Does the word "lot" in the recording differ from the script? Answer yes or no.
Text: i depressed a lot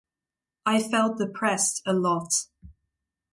no